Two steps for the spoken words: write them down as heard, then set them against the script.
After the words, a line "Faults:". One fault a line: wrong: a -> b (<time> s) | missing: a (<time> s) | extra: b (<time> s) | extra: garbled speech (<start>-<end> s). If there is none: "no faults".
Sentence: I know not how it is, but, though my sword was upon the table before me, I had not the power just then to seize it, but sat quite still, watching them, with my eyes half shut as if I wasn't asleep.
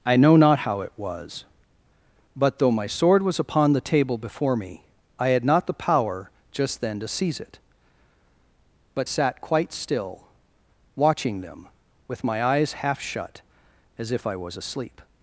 I know not how it was, but, though my sword was upon the table before me, I had not the power just then to seize it, but sat quite still, watching them, with my eyes half shut as if I was asleep.
Faults:
wrong: is -> was (1.0 s)
wrong: wasn't -> was (14.4 s)